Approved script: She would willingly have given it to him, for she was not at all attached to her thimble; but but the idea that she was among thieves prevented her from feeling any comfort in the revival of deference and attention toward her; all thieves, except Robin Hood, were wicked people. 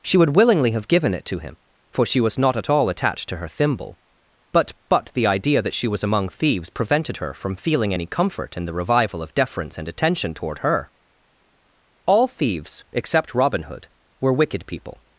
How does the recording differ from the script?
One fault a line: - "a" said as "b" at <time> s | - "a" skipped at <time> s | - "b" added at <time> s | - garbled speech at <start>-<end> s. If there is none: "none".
none